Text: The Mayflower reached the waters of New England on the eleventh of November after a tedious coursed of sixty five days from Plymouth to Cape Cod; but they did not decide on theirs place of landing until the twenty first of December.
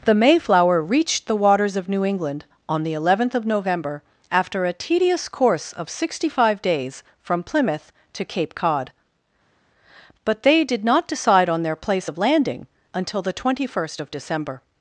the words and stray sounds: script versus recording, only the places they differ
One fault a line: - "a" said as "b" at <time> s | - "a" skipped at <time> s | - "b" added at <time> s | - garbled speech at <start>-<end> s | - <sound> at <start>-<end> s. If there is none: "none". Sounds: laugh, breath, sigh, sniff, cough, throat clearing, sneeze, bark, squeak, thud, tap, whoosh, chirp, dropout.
- "coursed" said as "course" at 5.3 s
- "theirs" said as "their" at 11.6 s